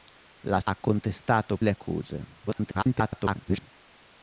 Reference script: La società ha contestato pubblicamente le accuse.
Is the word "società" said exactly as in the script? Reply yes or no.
no